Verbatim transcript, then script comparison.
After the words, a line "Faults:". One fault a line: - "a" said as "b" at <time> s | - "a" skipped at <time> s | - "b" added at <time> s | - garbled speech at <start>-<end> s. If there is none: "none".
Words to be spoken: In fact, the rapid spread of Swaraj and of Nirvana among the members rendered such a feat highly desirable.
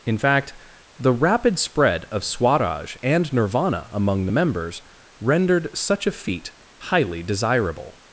In fact, the rapid spread of Swaraj and Nirvana among the members rendered such a feat highly desirable.
Faults:
- "of" skipped at 3.3 s